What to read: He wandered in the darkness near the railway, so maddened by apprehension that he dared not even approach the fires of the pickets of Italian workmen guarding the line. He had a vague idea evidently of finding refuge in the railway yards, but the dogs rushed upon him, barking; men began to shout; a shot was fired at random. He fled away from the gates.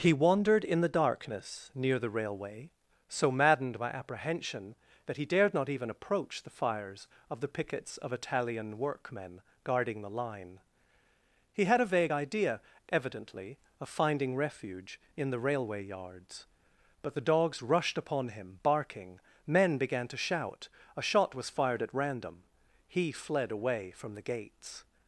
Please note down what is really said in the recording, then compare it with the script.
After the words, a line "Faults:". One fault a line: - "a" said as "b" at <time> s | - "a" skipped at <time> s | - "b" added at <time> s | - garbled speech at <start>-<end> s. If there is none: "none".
He wandered in the darkness near the railway, so maddened by apprehension that he dared not even approach the fires of the pickets of Italian workmen guarding the line. He had a vague idea evidently of finding refuge in the railway yards, but the dogs rushed upon him, barking; men began to shout; a shot was fired at random. He fled away from the gates.
Faults:
none